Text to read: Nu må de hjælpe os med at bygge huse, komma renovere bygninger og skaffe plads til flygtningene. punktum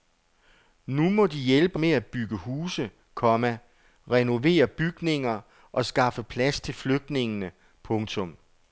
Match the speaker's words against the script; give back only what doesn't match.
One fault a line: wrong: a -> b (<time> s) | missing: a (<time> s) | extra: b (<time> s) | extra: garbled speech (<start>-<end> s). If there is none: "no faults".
missing: os (1.8 s)